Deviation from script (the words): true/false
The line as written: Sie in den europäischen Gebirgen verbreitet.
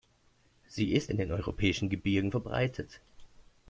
true